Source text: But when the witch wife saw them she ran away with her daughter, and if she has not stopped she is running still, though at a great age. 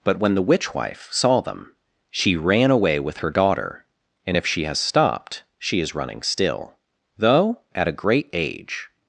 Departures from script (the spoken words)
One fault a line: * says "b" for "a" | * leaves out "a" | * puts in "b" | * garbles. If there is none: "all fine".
* leaves out "not"